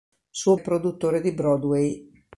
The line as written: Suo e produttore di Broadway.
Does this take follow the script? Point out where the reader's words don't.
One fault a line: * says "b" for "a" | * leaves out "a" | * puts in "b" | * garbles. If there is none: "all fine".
all fine